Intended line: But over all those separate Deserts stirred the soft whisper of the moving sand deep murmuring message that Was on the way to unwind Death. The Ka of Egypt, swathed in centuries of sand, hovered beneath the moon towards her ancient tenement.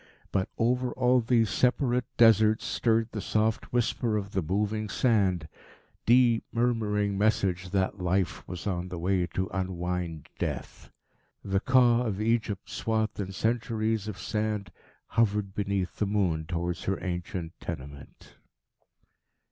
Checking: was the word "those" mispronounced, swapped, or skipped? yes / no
yes